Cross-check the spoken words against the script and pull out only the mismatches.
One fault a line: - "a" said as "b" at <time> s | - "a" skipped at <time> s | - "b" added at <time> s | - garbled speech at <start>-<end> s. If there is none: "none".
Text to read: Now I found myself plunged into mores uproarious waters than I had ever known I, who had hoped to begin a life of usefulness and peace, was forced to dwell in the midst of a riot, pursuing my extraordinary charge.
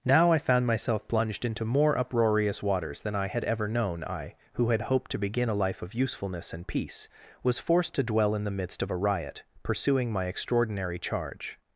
- "mores" said as "more" at 1.6 s